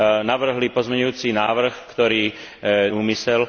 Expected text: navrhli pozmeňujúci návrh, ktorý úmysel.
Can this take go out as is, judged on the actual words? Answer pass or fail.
pass